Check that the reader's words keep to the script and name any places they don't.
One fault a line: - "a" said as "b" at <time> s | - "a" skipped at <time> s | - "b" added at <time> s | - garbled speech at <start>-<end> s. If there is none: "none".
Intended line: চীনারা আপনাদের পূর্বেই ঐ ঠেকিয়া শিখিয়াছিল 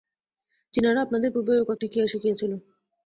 none